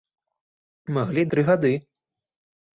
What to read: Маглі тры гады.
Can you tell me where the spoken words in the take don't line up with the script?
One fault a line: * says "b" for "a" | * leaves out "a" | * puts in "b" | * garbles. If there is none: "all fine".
all fine